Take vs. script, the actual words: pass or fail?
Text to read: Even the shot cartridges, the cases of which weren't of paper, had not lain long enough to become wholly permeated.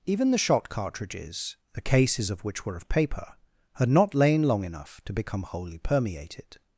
fail